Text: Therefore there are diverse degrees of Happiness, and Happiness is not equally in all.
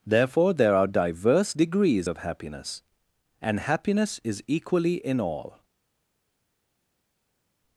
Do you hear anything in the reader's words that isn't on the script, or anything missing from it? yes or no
yes